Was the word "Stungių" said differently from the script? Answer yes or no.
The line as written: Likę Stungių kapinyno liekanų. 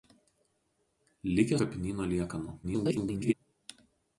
yes